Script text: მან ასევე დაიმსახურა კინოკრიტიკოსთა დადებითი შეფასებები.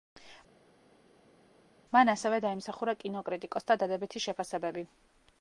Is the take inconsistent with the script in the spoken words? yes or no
no